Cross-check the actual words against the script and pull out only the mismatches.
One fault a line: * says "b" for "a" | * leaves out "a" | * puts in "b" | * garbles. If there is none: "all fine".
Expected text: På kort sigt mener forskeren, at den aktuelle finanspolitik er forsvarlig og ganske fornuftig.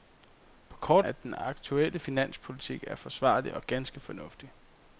* leaves out "sigt mener forskeren"